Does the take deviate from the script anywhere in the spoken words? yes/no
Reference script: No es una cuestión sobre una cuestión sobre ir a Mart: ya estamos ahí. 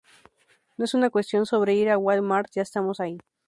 yes